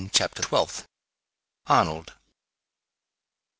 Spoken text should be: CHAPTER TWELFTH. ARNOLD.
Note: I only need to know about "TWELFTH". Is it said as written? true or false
true